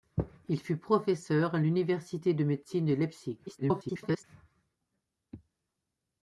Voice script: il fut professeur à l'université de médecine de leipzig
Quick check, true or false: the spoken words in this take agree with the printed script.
false